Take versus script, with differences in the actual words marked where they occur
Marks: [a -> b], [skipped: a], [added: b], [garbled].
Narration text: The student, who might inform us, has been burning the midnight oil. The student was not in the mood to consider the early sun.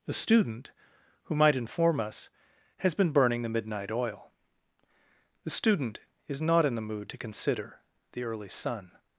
The student, who might inform us, has been burning the midnight oil. The student [was -> is] not in the mood to consider the early sun.